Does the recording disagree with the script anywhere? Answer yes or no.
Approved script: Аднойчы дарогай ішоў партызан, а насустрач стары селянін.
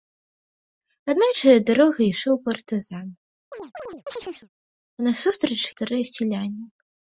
no